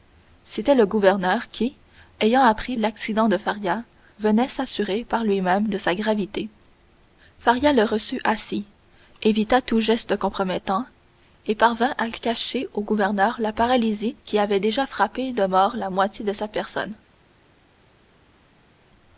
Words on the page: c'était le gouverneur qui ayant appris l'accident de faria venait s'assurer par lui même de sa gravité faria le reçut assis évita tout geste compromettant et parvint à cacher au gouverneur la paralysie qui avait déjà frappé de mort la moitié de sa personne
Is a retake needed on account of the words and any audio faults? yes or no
no